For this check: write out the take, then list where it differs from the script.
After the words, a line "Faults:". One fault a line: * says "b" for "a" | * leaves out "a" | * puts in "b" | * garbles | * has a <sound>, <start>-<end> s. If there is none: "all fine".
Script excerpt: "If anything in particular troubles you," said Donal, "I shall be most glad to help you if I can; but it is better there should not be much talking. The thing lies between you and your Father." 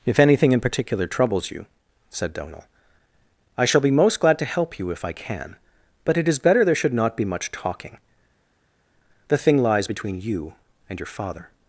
"If anything in particular troubles you," said Donal, "I shall be most glad to help you if I can; but it is better there should not be much talking. The thing lies between you and your Father."
Faults:
all fine